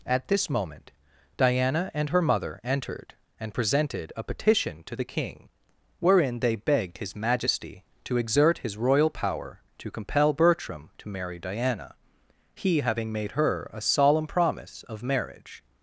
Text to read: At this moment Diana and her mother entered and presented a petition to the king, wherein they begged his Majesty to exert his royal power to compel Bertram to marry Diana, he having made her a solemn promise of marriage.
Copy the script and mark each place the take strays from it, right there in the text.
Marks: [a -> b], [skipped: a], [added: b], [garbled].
At this moment Diana and her mother entered and presented a petition to the king, wherein they begged his Majesty to exert his royal power to compel Bertram to marry Diana, he having made her a solemn promise of marriage.